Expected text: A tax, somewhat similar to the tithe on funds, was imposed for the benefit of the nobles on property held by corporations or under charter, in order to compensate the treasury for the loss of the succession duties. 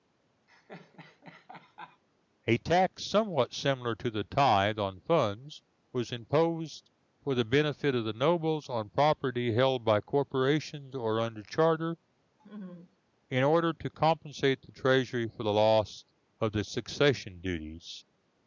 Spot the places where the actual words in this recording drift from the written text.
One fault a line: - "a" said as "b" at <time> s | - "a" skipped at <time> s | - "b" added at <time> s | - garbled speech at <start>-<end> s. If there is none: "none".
none